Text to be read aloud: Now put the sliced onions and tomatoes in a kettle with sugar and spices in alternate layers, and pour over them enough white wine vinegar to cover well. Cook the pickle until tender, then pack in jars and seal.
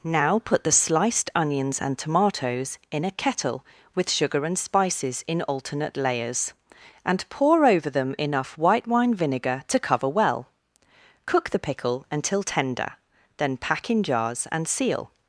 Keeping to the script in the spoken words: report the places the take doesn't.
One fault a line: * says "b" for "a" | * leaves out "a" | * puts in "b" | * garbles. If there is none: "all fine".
all fine